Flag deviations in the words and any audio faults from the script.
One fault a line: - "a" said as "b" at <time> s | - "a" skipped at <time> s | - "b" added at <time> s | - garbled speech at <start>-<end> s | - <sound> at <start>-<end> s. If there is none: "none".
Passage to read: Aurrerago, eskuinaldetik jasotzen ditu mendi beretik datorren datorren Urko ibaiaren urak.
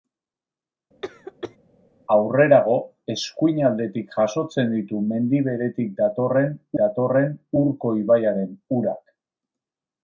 - cough at 1.0-1.6 s